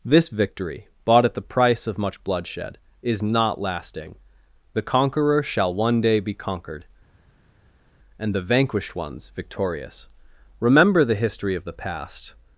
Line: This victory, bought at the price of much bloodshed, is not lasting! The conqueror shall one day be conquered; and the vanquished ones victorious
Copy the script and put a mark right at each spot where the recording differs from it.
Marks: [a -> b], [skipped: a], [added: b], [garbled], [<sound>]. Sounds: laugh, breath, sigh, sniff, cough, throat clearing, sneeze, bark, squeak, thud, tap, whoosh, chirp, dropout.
This victory, bought at the price of much bloodshed, is not lasting! The conqueror shall one day be conquered; and the vanquished ones victorious [added: Remember the history of the past]